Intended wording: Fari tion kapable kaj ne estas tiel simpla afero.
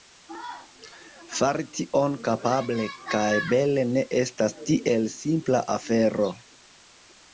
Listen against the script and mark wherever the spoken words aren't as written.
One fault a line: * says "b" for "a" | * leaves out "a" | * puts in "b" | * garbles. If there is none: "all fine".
* puts in "bele"